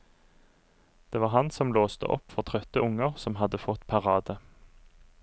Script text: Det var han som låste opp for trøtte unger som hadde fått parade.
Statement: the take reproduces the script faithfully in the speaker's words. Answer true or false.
true